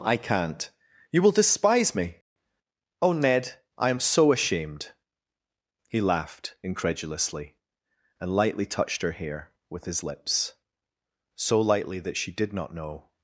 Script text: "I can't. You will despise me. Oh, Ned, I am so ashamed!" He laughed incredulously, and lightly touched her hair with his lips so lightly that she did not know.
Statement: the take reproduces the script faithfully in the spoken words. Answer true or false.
true